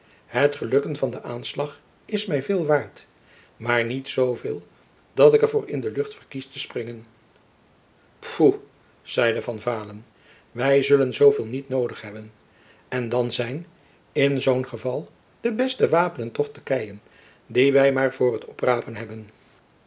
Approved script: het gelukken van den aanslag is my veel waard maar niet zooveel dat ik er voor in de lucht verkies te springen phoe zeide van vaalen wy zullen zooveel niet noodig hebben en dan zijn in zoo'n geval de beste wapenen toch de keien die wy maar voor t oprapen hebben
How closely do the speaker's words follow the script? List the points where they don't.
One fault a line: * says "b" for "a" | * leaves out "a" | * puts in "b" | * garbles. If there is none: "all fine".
all fine